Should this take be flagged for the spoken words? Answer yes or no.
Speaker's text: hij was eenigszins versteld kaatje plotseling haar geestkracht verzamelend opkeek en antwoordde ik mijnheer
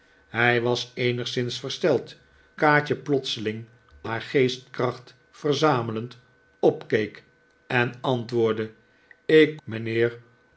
no